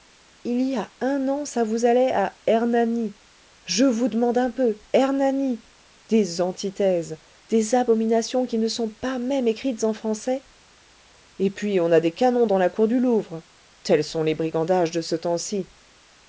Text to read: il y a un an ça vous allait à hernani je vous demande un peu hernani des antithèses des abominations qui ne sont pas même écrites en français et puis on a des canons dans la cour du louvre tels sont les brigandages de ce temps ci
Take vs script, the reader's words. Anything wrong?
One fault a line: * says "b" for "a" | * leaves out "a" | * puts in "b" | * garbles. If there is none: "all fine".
all fine